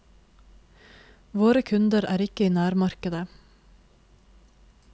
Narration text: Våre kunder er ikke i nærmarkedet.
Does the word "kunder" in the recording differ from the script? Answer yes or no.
no